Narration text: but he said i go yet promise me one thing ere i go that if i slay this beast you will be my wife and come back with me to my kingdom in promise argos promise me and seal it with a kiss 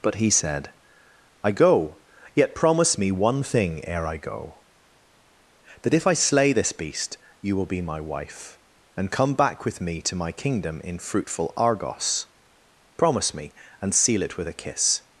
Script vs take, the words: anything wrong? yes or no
yes